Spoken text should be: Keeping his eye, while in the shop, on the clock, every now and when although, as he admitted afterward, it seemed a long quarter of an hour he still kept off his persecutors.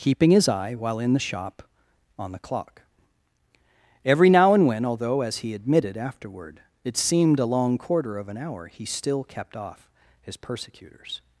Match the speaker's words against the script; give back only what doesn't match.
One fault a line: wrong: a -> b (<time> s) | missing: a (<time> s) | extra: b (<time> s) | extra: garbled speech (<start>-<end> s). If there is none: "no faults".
no faults